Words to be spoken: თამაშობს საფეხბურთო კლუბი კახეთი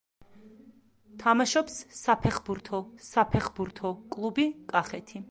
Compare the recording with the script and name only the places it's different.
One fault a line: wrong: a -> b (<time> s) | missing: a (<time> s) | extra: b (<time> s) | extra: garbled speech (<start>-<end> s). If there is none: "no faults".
extra: საფეხბურთო (3.1 s)